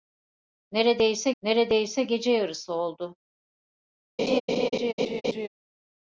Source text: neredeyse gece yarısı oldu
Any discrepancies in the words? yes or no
yes